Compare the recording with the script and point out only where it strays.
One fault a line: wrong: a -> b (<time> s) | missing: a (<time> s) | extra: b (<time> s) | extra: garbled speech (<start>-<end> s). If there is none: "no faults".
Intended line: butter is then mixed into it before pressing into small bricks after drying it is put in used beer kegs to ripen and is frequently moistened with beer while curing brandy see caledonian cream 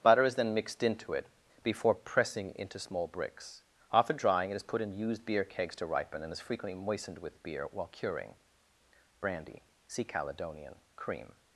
no faults